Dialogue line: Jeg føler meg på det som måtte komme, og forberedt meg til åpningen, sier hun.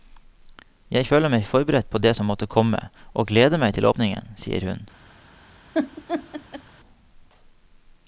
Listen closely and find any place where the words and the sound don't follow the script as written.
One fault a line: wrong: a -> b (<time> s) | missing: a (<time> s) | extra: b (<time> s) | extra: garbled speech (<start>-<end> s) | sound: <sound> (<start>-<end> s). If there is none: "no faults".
extra: forberedt (1.5 s)
wrong: forberedt -> gleder (3.3 s)
sound: laugh (5.7-6.6 s)